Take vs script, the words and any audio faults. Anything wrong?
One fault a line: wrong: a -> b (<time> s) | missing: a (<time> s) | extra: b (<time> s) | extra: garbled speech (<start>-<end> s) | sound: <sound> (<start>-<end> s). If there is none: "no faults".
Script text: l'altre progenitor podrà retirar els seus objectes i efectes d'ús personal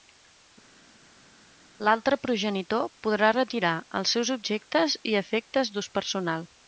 no faults